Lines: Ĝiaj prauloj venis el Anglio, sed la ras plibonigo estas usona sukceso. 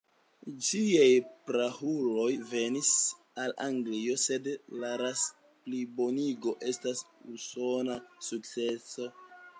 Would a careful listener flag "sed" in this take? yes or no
no